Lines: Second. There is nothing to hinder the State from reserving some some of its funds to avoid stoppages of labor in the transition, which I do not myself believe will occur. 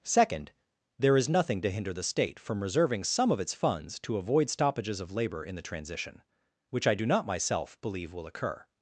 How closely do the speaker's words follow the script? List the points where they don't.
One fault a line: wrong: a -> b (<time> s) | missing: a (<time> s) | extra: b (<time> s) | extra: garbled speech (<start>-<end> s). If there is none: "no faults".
missing: some (3.3 s)